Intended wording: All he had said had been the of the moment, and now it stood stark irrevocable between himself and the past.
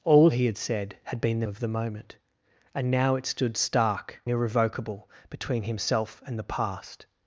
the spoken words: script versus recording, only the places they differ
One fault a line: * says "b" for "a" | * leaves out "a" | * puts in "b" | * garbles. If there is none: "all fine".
all fine